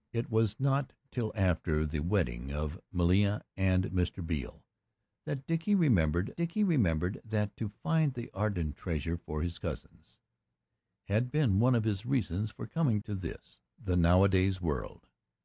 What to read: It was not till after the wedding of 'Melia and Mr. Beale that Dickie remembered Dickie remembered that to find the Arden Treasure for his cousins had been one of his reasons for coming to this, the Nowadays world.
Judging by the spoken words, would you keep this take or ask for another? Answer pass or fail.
pass